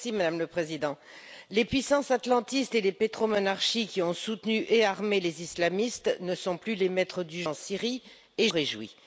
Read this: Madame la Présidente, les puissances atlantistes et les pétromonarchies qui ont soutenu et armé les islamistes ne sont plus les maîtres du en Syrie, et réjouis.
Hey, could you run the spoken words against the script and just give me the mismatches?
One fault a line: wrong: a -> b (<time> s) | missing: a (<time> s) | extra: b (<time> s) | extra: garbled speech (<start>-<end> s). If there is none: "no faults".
no faults